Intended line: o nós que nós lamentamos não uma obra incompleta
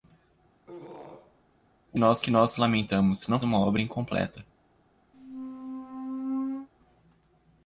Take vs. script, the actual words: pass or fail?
pass